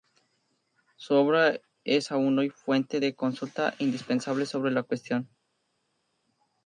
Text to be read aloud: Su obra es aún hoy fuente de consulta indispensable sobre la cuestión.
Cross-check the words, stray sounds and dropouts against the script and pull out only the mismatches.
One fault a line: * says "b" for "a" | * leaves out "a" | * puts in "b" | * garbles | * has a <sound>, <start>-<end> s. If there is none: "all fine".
all fine